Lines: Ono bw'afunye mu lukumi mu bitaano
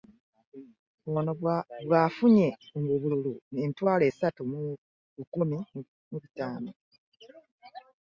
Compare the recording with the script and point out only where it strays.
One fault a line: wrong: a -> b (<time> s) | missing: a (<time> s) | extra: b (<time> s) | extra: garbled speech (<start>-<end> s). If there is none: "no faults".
extra: obululu emitwalo esatu (3.0 s)